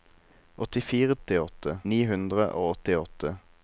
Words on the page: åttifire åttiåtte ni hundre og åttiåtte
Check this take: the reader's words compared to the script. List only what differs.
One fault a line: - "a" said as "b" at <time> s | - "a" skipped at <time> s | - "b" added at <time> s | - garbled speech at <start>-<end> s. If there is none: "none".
none